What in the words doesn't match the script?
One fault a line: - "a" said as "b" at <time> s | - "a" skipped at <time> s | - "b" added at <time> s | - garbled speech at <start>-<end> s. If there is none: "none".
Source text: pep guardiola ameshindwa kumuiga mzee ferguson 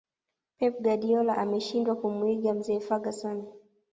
none